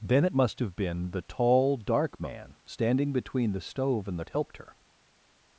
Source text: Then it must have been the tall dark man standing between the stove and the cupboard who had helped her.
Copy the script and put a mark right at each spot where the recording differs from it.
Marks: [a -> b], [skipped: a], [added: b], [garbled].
Then it must have been the tall dark man standing between the stove and the [skipped: cupboard who had] helped her.